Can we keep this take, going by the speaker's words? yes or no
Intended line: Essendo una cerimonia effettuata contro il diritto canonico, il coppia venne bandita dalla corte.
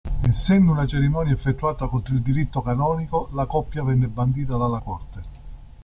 no